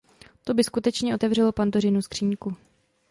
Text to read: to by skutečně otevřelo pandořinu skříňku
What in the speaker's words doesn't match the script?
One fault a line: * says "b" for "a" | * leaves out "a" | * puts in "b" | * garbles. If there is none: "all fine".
all fine